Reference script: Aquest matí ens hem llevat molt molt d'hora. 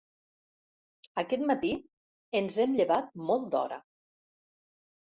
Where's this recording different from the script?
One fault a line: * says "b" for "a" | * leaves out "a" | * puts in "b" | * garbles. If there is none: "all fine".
* leaves out "molt"